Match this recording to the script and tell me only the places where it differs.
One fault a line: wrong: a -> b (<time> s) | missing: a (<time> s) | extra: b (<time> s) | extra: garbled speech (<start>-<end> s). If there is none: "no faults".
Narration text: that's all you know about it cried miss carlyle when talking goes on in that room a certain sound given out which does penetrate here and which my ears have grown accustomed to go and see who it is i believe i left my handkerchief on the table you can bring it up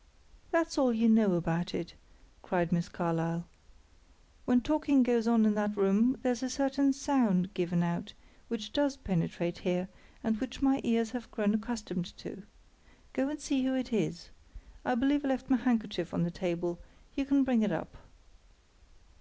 extra: there's (6.2 s)